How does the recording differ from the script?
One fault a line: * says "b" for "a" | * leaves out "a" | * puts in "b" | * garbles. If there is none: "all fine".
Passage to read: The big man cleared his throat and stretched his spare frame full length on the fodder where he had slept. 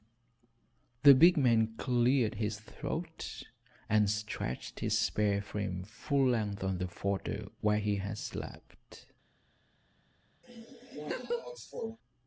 all fine